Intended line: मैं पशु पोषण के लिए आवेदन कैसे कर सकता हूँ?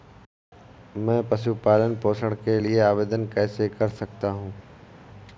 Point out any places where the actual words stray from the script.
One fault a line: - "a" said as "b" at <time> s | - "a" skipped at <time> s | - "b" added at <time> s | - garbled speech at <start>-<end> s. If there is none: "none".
- "पालन" added at 1.6 s